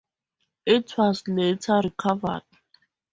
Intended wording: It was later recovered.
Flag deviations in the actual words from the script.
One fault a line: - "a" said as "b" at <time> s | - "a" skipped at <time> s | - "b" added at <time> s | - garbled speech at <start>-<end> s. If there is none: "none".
none